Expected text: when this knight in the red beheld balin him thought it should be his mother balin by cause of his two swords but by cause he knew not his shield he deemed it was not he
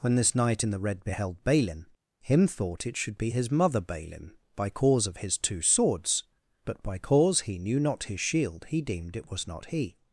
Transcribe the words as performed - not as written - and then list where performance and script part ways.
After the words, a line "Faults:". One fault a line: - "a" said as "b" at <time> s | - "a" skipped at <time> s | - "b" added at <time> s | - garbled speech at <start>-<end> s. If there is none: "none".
when this knight in the red beheld balin him thought it should be his mother balin by cause of his two swords but by cause he knew not his shield he deemed it was not he
Faults:
none